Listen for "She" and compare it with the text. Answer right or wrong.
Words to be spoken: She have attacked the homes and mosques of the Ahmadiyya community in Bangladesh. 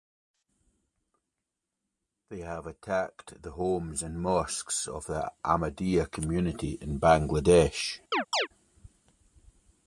wrong